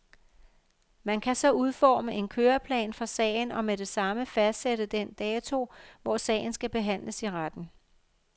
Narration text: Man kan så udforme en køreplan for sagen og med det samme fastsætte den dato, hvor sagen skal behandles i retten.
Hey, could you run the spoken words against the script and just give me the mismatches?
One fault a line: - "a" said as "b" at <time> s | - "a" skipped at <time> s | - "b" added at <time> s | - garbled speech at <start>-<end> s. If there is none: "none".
none